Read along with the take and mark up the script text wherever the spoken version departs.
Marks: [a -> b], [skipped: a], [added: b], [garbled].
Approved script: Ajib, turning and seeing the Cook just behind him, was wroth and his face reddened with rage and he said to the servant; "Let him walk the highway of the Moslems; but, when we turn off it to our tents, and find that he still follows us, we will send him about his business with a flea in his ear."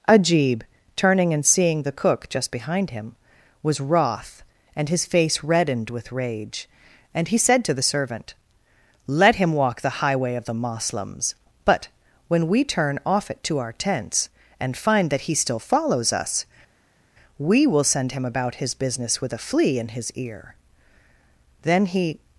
Ajib, turning and seeing the Cook just behind him, was wroth and his face reddened with rage and he said to the servant; "Let him walk the highway of the Moslems; but, when we turn off it to our tents, and find that he still follows us, we will send him about his business with a flea in his ear." [added: Then he]